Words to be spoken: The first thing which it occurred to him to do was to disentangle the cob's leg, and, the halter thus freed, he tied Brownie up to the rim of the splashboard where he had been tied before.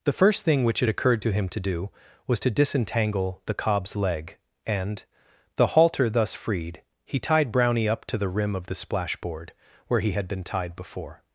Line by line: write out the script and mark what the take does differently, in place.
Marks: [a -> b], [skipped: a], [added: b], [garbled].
The first thing which it occurred to him to do was to disentangle the cob's leg, and, the halter thus freed, he tied Brownie up to the rim of the splashboard where he had been tied before.